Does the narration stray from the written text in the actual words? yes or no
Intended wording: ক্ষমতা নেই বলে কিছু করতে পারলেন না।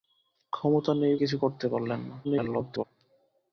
yes